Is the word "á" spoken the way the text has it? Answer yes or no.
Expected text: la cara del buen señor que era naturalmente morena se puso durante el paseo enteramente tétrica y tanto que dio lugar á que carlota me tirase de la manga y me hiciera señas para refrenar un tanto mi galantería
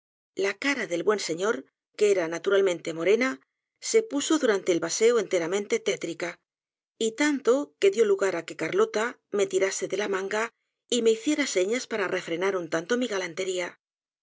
yes